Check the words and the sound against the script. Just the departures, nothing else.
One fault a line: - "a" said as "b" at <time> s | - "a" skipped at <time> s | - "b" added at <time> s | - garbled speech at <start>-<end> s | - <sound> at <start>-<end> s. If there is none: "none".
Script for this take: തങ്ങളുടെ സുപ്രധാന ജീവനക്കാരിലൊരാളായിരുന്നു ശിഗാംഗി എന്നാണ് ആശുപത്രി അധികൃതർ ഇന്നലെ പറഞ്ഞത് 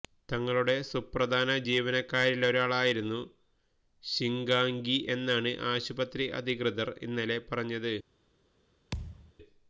- thud at 8.9-9.3 s